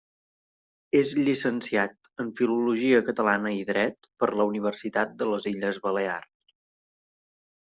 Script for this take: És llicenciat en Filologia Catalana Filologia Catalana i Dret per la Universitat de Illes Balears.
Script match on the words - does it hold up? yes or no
no